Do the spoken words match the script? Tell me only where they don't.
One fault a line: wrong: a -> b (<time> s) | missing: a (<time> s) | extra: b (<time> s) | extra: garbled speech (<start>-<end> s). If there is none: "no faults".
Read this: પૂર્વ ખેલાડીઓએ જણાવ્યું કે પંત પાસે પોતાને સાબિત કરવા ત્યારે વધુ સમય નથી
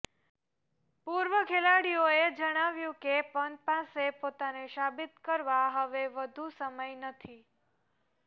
wrong: ત્યારે -> હવે (5.7 s)